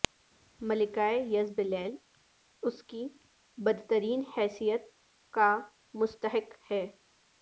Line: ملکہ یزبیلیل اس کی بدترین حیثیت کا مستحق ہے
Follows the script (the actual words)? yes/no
yes